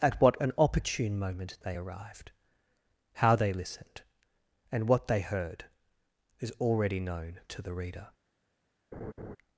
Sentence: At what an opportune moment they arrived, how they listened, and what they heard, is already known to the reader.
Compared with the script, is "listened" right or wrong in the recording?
right